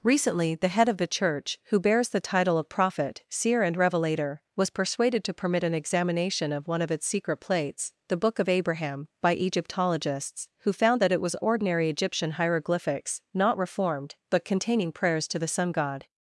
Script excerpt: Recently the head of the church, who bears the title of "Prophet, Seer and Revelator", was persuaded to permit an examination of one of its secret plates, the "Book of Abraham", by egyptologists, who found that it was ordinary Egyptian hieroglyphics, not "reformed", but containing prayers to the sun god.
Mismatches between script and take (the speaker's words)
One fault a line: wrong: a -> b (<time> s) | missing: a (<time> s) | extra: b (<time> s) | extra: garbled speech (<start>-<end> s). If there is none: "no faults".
no faults